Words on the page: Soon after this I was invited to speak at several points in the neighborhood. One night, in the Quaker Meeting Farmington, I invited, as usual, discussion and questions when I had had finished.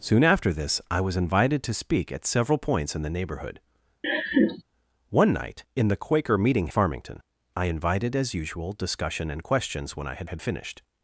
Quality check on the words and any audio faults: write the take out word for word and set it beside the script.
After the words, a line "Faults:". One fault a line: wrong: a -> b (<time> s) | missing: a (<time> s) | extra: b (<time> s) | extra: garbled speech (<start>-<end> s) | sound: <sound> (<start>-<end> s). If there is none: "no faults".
Soon after this I was invited to speak at several points in the neighborhood. One night, in the Quaker Meeting Farmington, I invited, as usual, discussion and questions when I had had finished.
Faults:
sound: laugh (4.0-4.6 s)